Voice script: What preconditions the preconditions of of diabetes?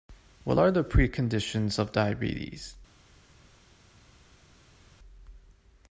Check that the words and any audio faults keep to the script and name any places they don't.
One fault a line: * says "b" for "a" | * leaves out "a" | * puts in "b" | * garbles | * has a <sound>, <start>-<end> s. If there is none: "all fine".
* says "are" for "preconditions"
* leaves out "of"